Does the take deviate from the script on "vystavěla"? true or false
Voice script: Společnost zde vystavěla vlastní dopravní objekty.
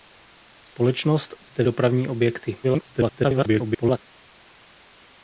true